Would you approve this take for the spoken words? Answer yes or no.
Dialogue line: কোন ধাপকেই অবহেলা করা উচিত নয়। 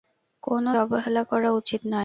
no